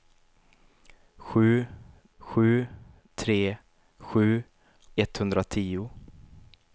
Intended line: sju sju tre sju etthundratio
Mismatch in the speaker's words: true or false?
false